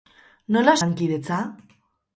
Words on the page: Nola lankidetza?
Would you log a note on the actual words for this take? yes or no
no